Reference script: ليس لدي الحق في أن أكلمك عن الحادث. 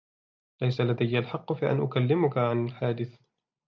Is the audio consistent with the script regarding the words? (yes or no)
yes